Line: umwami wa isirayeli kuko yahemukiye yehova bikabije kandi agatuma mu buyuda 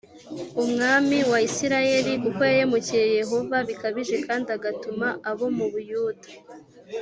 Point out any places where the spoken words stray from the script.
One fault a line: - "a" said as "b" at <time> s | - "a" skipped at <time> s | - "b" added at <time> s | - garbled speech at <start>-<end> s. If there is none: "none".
- "abo" added at 5.3 s